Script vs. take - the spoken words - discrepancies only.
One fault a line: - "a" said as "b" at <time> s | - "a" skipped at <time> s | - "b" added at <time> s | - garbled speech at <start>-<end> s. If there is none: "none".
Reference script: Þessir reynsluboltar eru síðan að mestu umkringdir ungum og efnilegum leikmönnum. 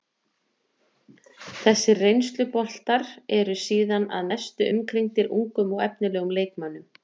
none